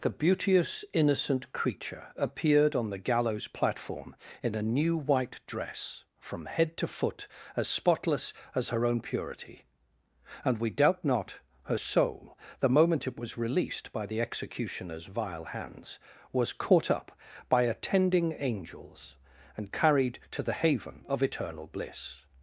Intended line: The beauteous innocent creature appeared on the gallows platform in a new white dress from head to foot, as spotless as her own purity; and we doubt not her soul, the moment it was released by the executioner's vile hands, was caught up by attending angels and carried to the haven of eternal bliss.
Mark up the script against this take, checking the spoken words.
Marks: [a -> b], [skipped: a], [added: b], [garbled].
The beauteous innocent creature appeared on the gallows platform in a new white dress from head to foot, as spotless as her own purity; and we doubt not her soul, the moment it was released by the executioner's vile hands, was caught up by attending angels and carried to the haven of eternal bliss.